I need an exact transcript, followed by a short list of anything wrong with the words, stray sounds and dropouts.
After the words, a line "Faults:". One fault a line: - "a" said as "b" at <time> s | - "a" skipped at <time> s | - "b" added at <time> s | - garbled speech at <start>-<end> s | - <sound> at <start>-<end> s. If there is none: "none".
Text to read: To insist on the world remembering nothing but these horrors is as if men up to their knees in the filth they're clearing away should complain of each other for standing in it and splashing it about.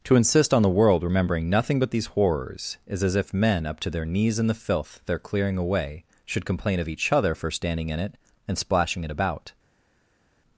To insist on the world remembering nothing but these horrors is as if men up to their knees in the filth they're clearing away should complain of each other for standing in it and splashing it about.
Faults:
none